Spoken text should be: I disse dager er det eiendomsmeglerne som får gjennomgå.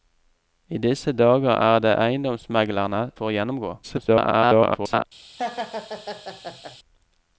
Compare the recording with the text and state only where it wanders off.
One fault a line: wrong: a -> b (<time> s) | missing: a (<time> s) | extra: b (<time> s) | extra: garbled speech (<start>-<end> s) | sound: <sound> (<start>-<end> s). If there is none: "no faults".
missing: som (3.1 s)
extra: garbled speech (3.8-5.0 s)
sound: laugh (5.4-6.8 s)